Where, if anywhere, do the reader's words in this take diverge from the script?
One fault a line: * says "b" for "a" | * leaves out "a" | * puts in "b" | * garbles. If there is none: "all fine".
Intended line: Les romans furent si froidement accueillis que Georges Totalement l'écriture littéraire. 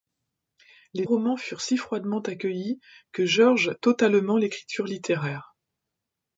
all fine